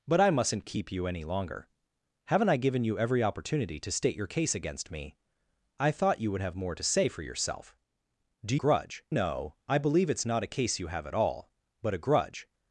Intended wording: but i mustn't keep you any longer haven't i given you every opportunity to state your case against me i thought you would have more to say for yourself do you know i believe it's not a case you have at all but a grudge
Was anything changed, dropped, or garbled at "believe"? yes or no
no